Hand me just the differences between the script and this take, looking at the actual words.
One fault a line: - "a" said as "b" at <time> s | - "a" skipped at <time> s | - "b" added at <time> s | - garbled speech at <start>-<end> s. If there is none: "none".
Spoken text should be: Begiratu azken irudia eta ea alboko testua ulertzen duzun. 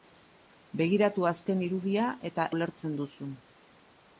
- "ea alboko testua" skipped at 2.5 s